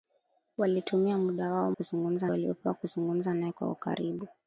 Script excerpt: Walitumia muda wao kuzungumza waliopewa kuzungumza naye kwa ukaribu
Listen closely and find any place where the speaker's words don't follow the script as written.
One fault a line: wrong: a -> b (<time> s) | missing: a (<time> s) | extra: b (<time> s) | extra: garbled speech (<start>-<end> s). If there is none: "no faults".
no faults